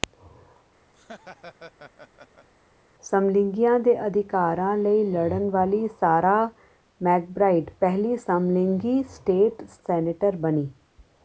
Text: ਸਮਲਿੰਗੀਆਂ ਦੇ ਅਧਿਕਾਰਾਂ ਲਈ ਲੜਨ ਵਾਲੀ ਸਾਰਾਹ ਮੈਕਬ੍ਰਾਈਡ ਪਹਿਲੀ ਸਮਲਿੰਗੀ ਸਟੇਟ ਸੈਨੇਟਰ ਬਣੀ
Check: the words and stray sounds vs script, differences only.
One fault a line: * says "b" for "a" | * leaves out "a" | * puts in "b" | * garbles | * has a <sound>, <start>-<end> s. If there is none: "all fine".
* has a laugh, 0.9-2.5 s